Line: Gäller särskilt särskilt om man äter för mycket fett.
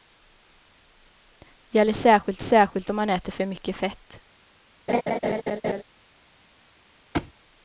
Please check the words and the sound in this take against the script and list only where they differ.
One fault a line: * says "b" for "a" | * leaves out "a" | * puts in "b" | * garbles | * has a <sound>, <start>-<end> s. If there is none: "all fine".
* has a laugh, 4.9-5.8 s
* has a thud, 7.1-7.3 s